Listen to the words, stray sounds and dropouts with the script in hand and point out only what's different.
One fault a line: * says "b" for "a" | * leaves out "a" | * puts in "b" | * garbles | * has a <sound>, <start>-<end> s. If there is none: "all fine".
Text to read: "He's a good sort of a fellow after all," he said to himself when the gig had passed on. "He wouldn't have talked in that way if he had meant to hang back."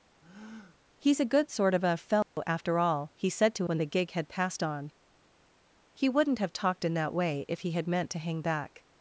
* has a breath, 0.2-0.8 s
* has a dropout, 2.2-2.4 s
* leaves out "himself"